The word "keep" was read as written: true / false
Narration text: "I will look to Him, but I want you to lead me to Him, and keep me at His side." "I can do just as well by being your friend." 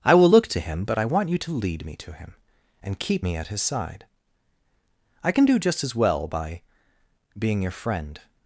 true